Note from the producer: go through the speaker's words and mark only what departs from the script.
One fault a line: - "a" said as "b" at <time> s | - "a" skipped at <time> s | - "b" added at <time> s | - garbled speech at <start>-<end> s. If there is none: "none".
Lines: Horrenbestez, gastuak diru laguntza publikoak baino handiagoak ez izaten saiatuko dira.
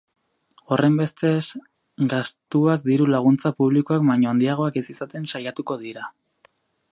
none